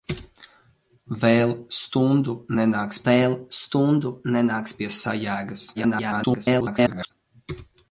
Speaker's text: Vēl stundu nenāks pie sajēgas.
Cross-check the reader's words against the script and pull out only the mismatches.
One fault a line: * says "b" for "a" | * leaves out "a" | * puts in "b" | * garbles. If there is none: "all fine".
* puts in "vēl stundu nenāks"
* garbles